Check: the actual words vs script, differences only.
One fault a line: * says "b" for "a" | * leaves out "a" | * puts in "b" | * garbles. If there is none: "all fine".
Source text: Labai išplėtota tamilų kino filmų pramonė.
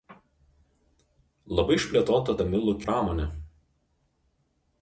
* leaves out "kino filmų"